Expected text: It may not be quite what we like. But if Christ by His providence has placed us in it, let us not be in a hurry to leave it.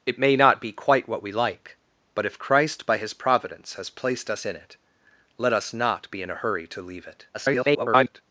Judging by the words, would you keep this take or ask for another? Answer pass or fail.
fail